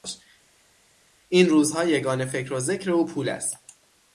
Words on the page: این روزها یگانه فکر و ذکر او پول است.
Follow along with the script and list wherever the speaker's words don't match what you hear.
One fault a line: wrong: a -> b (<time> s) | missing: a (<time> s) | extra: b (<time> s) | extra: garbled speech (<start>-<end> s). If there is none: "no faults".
no faults